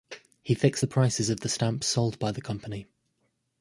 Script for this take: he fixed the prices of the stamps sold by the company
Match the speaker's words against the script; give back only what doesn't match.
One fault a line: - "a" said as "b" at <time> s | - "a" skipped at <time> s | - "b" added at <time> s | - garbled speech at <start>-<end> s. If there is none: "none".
none